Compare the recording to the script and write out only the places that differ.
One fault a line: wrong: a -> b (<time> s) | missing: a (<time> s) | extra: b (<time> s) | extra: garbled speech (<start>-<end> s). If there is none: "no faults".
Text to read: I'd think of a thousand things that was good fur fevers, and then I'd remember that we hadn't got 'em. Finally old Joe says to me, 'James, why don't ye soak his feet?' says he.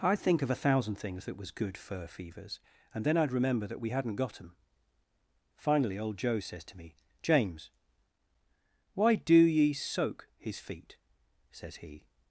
wrong: don't -> do (9.2 s)